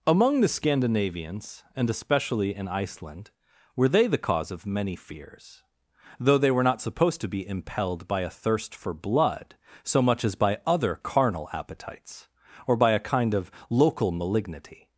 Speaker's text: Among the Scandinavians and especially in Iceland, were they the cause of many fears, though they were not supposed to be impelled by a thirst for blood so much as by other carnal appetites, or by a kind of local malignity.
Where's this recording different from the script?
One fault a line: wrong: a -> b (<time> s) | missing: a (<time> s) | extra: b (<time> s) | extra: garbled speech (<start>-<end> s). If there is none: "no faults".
no faults